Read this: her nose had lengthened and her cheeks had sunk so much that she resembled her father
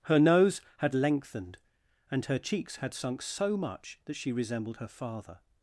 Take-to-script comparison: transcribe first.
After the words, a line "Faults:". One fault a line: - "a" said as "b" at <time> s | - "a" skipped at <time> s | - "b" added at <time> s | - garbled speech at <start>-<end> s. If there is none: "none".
her nose had lengthened and her cheeks had sunk so much that she resembled her father
Faults:
none